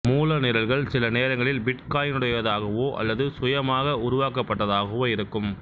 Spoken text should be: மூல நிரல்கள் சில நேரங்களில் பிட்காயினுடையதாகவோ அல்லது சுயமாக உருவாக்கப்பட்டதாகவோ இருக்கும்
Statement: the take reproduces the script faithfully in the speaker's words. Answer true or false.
true